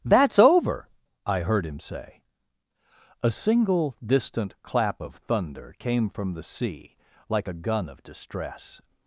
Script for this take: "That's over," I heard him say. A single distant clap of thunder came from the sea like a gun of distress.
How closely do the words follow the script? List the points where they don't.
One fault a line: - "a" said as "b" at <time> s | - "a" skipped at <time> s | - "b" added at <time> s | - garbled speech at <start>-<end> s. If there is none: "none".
none